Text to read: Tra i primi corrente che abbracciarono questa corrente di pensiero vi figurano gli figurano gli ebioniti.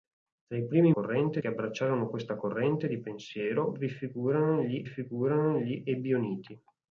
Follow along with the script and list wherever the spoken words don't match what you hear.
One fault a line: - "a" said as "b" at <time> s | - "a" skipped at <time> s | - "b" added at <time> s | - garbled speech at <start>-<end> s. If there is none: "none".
none